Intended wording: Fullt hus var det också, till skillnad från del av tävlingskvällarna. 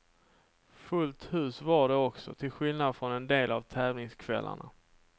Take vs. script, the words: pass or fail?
fail